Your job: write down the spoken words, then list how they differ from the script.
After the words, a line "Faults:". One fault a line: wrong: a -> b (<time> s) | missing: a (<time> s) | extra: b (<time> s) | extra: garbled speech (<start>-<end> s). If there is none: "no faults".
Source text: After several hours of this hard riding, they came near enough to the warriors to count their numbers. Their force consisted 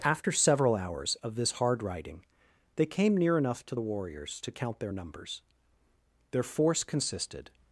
After several hours of this hard riding, they came near enough to the warriors to count their numbers. Their force consisted
Faults:
no faults